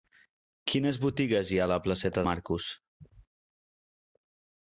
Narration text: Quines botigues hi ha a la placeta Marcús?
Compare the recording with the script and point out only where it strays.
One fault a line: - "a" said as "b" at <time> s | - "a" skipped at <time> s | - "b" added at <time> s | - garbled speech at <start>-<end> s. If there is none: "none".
none